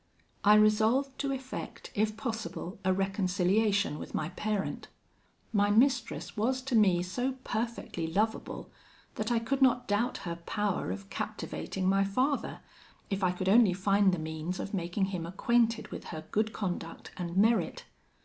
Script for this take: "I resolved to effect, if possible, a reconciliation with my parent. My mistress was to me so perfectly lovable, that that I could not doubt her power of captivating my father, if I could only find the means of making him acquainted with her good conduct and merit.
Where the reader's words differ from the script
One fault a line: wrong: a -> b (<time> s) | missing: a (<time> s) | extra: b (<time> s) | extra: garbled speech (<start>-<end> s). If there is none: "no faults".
missing: that (9.3 s)